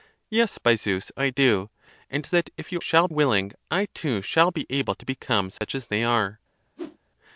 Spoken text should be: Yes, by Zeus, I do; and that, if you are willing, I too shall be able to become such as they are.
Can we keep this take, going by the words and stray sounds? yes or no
no